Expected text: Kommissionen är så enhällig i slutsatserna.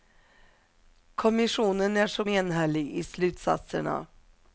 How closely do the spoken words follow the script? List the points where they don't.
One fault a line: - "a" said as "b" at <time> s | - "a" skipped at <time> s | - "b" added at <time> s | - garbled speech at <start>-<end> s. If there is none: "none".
none